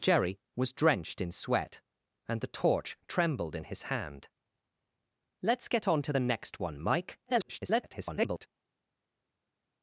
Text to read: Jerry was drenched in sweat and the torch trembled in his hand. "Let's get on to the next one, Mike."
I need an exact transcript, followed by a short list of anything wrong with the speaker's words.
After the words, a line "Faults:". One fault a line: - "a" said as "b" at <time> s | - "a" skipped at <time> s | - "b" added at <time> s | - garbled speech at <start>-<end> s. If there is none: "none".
Jerry was drenched in sweat and the torch trembled in his hand. "Let's get on to the next one, Mike." [garbled]
Faults:
- garbled speech at 7.3-8.5 s